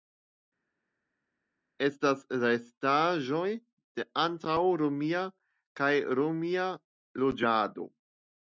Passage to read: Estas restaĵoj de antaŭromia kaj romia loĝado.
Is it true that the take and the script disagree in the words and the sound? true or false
false